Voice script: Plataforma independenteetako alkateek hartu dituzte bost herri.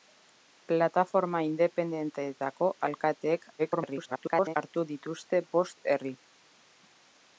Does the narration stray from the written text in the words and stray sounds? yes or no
yes